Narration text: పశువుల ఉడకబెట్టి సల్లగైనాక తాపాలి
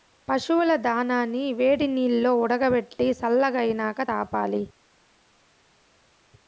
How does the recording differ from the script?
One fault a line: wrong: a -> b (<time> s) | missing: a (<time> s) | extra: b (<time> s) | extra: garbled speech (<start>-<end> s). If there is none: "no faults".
extra: దానాని వేడినీల్లో (0.8 s)